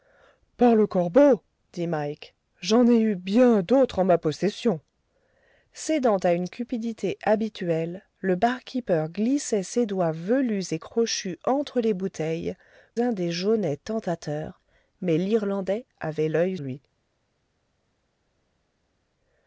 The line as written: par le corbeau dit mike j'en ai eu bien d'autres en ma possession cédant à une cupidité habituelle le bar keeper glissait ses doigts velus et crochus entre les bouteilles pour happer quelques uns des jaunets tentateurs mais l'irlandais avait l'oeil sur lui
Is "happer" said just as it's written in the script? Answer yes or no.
no